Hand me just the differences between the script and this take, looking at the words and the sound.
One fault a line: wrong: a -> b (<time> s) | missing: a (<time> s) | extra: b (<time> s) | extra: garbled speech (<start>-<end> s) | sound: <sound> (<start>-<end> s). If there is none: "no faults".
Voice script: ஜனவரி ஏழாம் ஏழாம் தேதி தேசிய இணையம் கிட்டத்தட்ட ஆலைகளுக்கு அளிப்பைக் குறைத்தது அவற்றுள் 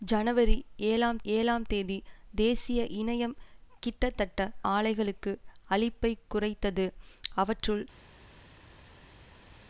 no faults